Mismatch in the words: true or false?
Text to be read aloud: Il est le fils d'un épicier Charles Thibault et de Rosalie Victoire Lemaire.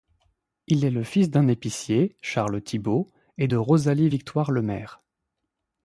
false